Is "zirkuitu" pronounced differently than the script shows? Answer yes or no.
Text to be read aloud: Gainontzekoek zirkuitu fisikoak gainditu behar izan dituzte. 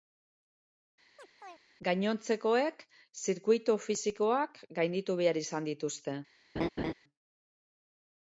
no